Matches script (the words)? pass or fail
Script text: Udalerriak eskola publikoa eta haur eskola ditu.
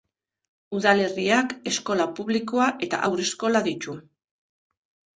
pass